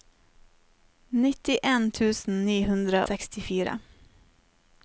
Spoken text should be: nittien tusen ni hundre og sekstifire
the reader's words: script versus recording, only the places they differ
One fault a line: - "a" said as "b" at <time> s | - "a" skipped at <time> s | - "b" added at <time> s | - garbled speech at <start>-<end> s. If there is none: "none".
- "og" skipped at 3.0 s